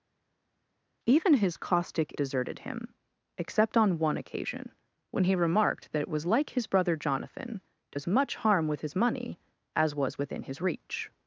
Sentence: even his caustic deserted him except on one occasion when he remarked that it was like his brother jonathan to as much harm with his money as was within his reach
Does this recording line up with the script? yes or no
yes